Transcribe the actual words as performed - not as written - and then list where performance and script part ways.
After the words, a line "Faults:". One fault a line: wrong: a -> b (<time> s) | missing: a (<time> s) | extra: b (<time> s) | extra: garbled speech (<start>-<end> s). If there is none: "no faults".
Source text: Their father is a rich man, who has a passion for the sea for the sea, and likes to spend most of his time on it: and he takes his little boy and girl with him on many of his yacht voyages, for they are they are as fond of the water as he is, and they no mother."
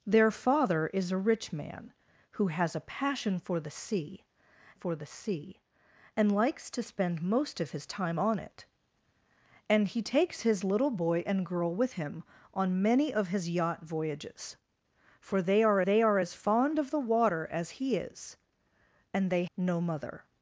Their father is a rich man, who has a passion for the sea for the sea, and likes to spend most of his time on it: and he takes his little boy and girl with him on many of his yacht voyages, for they are they are as fond of the water as he is, and they no mother."
Faults:
no faults